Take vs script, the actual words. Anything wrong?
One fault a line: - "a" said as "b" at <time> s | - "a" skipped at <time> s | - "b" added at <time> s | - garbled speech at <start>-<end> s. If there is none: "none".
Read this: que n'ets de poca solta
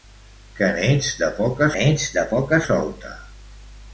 - "n'ets de poca" added at 1.7 s